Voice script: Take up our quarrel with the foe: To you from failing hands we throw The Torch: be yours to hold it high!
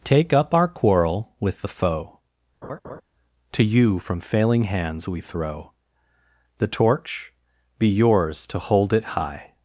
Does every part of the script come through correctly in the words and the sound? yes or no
no